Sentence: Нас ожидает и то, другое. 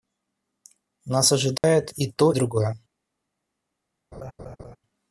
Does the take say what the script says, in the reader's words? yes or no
yes